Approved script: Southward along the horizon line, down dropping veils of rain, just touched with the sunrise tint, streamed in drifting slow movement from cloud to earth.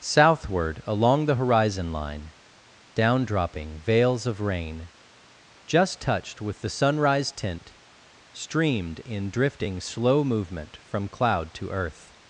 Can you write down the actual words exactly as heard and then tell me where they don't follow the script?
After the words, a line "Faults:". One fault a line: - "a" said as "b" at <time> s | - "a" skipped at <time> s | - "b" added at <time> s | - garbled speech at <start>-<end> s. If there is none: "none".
Southward along the horizon line, down dropping veils of rain, just touched with the sunrise tint, streamed in drifting slow movement from cloud to earth.
Faults:
none